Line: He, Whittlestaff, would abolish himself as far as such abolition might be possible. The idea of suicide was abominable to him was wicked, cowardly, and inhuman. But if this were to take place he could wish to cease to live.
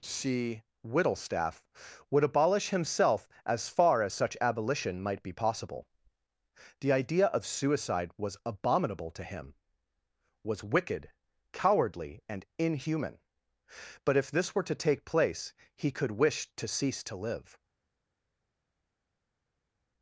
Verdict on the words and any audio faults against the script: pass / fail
fail